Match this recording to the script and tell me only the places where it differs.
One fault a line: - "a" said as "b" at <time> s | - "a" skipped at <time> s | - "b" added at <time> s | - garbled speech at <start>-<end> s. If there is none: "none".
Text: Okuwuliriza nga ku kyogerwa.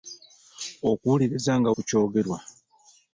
none